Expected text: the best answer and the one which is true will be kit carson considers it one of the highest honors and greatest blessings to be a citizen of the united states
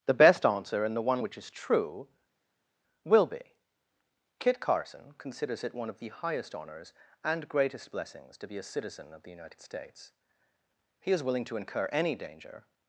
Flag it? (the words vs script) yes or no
yes